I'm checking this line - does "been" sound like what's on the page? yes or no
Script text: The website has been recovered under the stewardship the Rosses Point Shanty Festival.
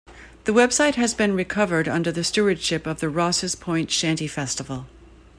yes